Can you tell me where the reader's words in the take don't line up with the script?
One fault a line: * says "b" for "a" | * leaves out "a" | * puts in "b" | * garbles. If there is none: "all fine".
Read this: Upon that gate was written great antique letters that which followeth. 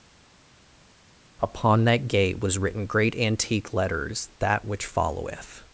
all fine